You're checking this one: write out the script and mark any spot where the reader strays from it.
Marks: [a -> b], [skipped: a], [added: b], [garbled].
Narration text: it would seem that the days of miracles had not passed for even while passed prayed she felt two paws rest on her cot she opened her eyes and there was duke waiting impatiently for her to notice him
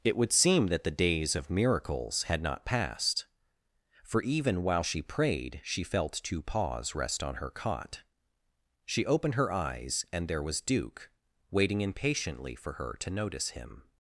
it would seem that the days of miracles had not passed for even while [passed -> she] prayed she felt two paws rest on her cot she opened her eyes and there was duke waiting impatiently for her to notice him